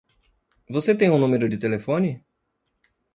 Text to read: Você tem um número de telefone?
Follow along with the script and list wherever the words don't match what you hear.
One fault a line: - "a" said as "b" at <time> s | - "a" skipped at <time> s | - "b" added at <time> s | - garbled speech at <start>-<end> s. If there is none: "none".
none